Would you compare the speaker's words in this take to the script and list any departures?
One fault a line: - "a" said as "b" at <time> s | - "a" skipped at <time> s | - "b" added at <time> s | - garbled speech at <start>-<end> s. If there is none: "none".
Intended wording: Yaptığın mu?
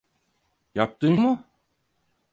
none